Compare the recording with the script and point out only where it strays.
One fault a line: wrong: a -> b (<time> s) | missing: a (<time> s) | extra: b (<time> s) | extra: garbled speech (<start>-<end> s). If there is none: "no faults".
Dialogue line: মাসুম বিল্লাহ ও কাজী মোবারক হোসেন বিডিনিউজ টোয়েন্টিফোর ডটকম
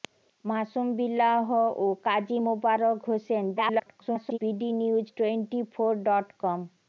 extra: garbled speech (3.6-4.4 s)